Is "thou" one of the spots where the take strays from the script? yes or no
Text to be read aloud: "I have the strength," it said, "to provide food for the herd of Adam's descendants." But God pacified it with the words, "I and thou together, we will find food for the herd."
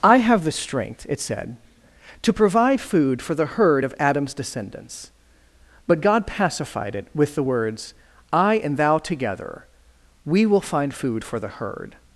no